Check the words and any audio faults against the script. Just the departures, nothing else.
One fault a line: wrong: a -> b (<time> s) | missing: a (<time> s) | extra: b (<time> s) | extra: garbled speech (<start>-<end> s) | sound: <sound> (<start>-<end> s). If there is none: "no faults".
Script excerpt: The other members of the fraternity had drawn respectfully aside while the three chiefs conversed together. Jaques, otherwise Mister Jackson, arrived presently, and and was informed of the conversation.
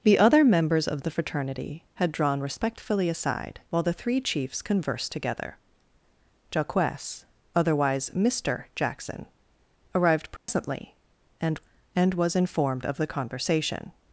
sound: dropout (10.4-10.5 s)